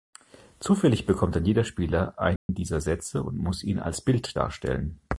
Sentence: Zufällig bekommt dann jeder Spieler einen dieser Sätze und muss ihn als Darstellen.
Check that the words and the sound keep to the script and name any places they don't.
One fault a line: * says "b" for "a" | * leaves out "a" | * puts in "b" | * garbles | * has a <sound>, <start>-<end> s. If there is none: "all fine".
* has a dropout, 2.4-2.5 s
* puts in "Bild"